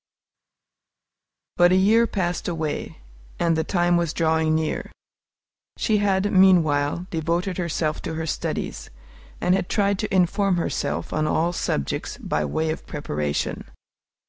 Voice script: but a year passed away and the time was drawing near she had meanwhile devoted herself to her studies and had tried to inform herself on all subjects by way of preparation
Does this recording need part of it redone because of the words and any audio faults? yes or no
no